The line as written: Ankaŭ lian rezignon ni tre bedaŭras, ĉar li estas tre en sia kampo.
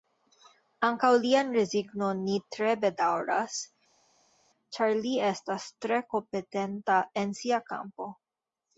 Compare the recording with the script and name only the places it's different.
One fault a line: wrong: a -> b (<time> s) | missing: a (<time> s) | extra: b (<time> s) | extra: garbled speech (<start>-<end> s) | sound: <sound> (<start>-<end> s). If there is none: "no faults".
extra: kompetenta (6.2 s)